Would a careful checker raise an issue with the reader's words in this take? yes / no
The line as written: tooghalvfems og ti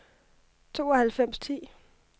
no